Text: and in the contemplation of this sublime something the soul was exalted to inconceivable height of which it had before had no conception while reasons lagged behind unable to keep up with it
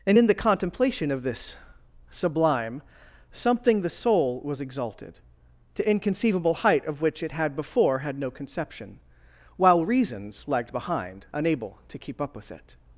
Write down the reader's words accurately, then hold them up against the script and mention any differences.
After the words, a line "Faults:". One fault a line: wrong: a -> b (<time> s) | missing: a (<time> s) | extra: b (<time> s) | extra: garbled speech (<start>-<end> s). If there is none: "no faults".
and in the contemplation of this sublime something the soul was exalted to inconceivable height of which it had before had no conception while reasons lagged behind unable to keep up with it
Faults:
no faults